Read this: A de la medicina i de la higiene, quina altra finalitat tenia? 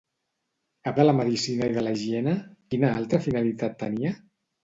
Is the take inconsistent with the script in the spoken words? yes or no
no